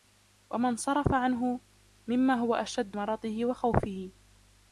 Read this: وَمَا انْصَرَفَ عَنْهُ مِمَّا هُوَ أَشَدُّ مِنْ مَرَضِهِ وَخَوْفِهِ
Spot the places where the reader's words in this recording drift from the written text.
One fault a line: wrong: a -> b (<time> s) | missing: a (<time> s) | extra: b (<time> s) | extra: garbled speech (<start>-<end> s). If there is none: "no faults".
missing: مِنْ (3.0 s)